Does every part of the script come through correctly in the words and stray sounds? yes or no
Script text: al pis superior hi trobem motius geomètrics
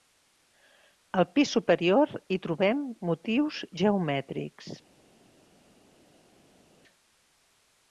yes